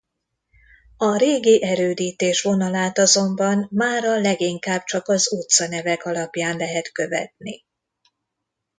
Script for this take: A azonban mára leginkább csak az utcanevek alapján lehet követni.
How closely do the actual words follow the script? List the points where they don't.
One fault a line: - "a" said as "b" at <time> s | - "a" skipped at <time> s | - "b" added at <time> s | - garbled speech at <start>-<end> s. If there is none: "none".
- "régi erődítés vonalát" added at 1.2 s